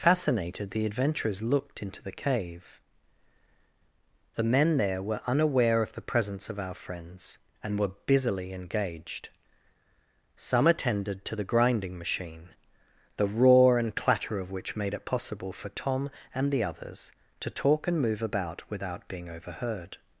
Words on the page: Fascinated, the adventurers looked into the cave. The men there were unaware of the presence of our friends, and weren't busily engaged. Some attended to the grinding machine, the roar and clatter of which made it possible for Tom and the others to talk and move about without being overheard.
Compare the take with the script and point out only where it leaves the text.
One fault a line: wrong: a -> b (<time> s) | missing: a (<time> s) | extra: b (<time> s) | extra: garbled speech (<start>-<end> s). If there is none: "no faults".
wrong: weren't -> were (7.8 s)